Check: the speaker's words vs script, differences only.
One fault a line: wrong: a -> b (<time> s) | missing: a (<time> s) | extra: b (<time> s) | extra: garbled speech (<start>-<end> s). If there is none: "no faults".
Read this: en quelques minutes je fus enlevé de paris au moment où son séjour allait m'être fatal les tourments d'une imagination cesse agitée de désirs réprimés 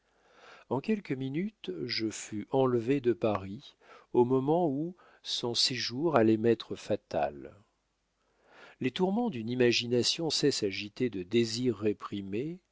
no faults